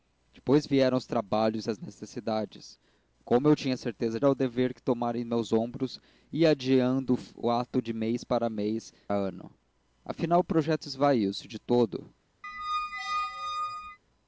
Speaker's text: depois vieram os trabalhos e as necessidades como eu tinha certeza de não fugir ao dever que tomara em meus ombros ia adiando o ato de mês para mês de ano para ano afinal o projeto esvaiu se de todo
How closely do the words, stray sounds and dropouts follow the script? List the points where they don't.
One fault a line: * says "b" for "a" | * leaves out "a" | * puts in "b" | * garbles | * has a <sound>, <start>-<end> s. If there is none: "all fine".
* leaves out "de não fugir"
* leaves out "de ano para"
* has a squeak, 12.4-14.0 s